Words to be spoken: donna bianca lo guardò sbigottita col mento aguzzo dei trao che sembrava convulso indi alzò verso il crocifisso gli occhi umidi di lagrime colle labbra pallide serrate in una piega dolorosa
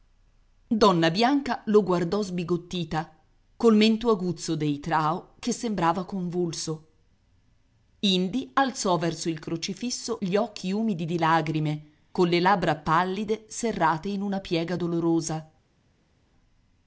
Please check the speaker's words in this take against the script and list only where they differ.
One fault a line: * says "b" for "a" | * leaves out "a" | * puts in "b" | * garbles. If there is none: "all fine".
all fine